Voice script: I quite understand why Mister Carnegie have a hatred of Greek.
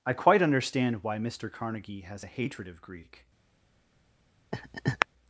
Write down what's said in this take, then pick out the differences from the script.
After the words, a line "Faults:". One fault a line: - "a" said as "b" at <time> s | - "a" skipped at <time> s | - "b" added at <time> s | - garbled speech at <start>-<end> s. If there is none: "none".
I quite understand why Mister Carnegie has a hatred of Greek.
Faults:
- "have" said as "has" at 2.0 s